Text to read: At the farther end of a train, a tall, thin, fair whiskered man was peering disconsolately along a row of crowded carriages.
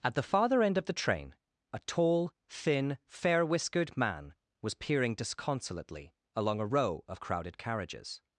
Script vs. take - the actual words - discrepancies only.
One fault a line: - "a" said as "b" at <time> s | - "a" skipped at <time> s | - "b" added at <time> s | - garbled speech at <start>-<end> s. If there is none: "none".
- "a" said as "the" at 0.9 s